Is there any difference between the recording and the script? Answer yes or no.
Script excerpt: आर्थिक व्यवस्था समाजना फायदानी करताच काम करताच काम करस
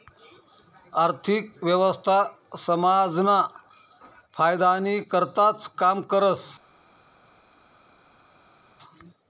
yes